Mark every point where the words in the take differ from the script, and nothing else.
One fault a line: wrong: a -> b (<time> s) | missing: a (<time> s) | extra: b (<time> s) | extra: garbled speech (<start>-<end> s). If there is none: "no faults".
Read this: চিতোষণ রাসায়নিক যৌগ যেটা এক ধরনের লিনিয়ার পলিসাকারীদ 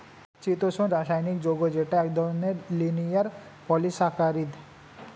no faults